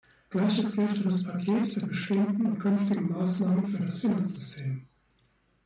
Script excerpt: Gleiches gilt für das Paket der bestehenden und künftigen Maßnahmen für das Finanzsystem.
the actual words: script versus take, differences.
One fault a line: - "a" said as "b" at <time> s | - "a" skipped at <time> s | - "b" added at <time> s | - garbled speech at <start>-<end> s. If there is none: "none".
none